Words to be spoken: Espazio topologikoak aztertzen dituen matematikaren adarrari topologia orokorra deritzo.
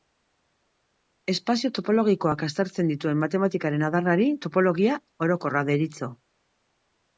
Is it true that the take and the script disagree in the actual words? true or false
false